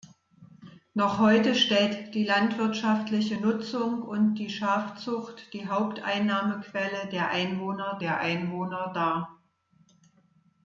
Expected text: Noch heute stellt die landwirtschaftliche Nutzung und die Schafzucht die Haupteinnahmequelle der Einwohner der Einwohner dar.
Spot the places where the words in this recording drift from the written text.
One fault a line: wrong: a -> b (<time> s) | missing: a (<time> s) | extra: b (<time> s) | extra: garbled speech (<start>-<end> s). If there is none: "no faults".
no faults